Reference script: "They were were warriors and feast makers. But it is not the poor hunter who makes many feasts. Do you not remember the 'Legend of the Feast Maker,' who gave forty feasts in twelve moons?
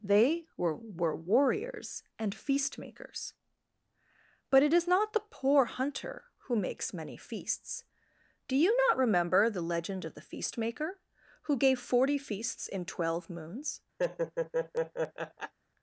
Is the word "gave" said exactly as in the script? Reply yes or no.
yes